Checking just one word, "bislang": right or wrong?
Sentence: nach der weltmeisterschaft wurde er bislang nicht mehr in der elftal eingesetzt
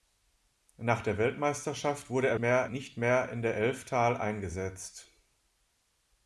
wrong